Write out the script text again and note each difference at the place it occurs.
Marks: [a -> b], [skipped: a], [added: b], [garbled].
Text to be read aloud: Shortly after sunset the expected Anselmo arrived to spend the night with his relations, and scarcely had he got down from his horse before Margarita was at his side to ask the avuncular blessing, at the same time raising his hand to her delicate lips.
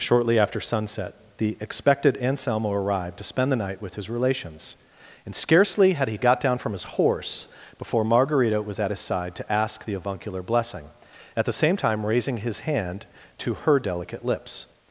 Shortly after sunset the expected Anselmo arrived to spend the night with his relations, and scarcely had he got down from his horse before Margarita was at his side to ask the avuncular blessing, at the same time raising his hand to her delicate lips.